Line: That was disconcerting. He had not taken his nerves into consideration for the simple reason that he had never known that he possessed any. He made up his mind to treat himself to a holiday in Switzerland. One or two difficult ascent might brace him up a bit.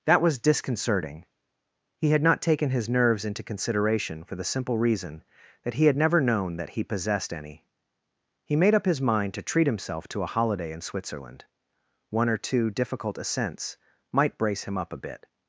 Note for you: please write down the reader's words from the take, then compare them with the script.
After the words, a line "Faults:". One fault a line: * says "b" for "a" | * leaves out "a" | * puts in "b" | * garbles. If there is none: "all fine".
That was disconcerting. He had not taken his nerves into consideration for the simple reason that he had never known that he possessed any. He made up his mind to treat himself to a holiday in Switzerland. One or two difficult ascents might brace him up a bit.
Faults:
* says "ascents" for "ascent"